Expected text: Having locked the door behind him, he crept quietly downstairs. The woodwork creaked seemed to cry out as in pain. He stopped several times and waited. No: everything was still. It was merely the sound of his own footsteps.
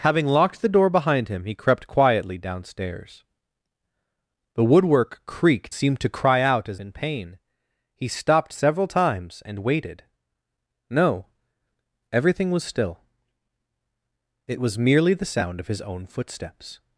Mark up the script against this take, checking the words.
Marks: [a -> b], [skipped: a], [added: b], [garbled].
Having locked the door behind him, he crept quietly downstairs. The woodwork creaked seemed to cry out as in pain. He stopped several times and waited. No: everything was still. It was merely the sound of his own footsteps.